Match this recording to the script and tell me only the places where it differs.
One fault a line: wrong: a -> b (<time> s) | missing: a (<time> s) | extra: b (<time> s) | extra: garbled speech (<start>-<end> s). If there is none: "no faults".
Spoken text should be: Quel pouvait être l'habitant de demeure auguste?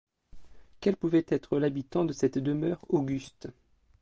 extra: cette (2.1 s)